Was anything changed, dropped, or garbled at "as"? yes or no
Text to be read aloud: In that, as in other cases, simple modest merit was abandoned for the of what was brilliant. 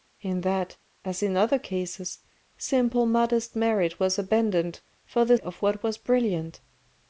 no